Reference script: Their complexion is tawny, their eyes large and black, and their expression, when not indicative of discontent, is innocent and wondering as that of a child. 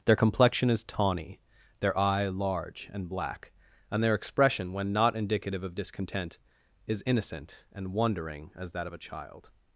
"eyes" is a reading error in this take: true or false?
true